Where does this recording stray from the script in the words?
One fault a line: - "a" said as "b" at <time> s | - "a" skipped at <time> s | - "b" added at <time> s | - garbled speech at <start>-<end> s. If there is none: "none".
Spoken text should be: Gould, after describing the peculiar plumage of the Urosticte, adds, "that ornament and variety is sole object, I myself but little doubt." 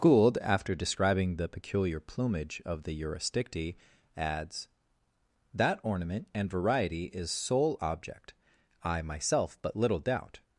none